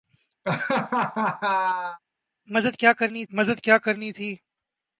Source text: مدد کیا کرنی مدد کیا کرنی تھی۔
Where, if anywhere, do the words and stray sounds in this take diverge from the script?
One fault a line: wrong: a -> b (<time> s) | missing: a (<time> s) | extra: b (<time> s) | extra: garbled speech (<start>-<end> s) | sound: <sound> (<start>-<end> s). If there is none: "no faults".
sound: laugh (0.4-2.0 s)